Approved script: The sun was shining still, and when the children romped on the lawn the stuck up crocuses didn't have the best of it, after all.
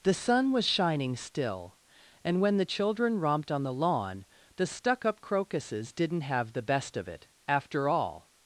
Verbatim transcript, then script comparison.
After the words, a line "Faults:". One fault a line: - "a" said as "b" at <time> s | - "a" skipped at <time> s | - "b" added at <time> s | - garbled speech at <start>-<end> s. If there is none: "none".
The sun was shining still, and when the children romped on the lawn the stuck up crocuses didn't have the best of it, after all.
Faults:
none